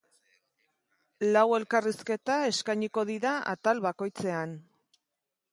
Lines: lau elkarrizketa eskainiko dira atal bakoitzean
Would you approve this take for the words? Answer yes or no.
yes